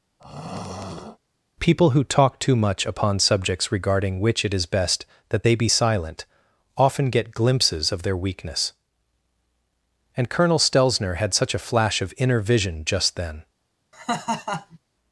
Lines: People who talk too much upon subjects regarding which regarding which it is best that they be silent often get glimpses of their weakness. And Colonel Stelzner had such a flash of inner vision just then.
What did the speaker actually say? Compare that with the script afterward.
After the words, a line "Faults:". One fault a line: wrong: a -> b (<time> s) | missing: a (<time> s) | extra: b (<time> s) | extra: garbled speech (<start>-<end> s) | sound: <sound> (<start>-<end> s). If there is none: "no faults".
People who talk too much upon subjects regarding which it is best that they be silent often get glimpses of their weakness. And Colonel Stelzner had such a flash of inner vision just then.
Faults:
sound: throat clearing (0.2-1.2 s)
missing: regarding which (4.4 s)
sound: laugh (13.9-14.8 s)